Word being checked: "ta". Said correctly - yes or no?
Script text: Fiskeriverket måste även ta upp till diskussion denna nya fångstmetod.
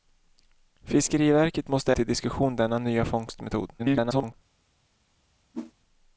no